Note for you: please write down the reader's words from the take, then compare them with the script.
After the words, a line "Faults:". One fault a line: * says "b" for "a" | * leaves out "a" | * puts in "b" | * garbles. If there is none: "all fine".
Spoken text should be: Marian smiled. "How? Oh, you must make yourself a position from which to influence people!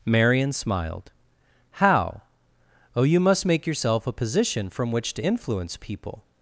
Marian smiled. "How? Oh, you must make yourself a position from which to influence people!
Faults:
all fine